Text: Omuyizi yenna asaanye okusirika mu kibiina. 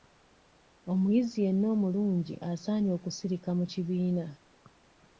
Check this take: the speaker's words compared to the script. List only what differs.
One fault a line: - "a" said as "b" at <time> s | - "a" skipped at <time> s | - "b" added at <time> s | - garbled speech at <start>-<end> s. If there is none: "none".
- "omulungi" added at 1.8 s